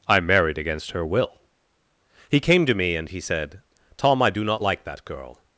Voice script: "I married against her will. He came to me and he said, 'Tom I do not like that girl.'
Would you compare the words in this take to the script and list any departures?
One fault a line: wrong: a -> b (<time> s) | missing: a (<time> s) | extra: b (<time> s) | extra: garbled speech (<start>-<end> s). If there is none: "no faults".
no faults